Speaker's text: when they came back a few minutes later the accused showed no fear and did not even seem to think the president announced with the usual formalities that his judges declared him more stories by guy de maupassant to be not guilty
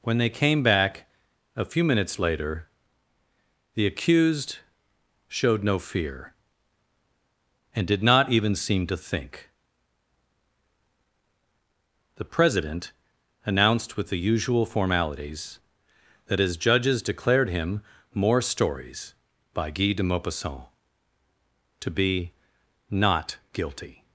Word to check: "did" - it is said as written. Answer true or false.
true